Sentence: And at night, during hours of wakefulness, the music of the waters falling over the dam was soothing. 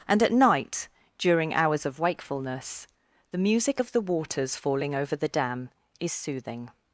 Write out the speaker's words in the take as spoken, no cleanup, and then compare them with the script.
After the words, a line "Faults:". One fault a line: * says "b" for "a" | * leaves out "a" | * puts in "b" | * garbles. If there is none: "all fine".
And at night, during hours of wakefulness, the music of the waters falling over the dam is soothing.
Faults:
* says "is" for "was"